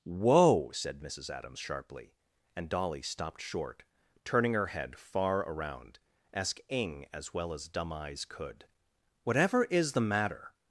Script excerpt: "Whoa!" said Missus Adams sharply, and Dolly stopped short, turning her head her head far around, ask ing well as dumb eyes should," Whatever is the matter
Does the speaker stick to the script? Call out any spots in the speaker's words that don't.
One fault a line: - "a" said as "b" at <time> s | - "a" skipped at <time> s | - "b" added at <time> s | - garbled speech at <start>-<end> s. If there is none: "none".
- "her head" skipped at 5.0 s
- "as" added at 7.1 s
- "should" said as "could" at 8.2 s